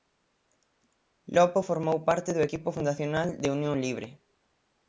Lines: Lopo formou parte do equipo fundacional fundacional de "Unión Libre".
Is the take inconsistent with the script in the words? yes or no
yes